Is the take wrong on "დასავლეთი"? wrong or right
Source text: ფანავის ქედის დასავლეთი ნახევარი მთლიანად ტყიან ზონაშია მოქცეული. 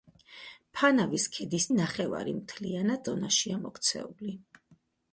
wrong